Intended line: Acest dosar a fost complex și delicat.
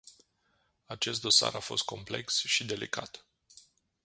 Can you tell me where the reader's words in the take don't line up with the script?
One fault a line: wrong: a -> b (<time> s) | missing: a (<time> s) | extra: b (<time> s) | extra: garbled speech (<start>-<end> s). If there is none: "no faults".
no faults